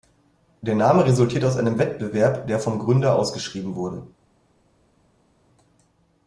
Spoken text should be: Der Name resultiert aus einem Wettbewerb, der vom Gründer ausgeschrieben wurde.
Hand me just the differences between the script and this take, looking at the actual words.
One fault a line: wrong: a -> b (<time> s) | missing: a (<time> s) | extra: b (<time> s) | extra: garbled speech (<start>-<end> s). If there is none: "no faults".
no faults